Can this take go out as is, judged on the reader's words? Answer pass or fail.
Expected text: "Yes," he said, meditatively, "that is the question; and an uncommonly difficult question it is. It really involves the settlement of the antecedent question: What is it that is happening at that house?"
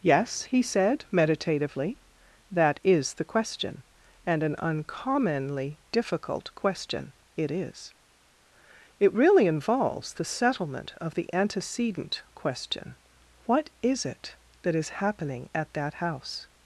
pass